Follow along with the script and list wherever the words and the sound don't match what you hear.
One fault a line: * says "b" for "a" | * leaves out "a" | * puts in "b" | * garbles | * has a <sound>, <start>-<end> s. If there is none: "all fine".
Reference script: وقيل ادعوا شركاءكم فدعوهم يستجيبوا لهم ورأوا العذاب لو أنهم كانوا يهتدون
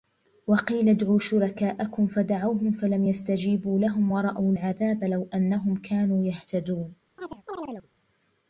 * puts in "فلم"
* has a chirp, 7.2-7.9 s